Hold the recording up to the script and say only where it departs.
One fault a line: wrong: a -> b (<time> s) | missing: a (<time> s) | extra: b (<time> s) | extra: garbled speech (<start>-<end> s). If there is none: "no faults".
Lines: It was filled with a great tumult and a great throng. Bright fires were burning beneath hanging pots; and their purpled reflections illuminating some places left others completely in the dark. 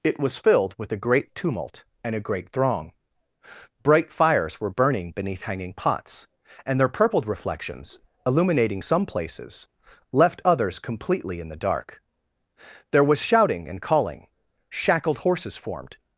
extra: There was shouting and calling shackled horses formed (12.9 s)